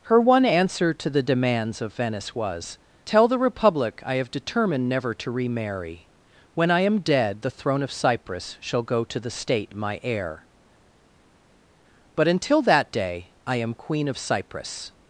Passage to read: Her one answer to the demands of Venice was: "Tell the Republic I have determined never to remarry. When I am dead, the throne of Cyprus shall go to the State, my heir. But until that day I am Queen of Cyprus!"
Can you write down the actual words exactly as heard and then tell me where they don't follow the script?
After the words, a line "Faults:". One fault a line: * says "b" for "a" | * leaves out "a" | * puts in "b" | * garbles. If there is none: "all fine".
Her one answer to the demands of Venice was: "Tell the Republic I have determined never to remarry. When I am dead, the throne of Cyprus shall go to the State, my heir. But until that day I am Queen of Cyprus!"
Faults:
all fine